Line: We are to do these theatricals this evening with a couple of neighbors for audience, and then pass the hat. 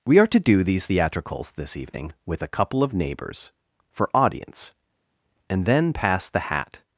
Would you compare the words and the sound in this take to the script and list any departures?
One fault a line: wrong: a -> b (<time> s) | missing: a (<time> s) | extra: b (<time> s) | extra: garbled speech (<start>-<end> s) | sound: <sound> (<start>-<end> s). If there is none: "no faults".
no faults